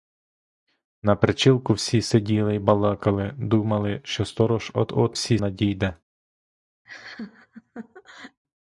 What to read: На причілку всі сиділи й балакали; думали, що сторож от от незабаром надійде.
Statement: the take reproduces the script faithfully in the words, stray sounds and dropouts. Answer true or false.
false